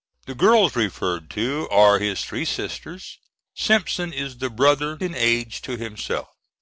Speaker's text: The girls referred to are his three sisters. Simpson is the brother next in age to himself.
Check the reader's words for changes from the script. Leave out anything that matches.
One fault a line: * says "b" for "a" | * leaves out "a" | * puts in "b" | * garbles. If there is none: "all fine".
* leaves out "next"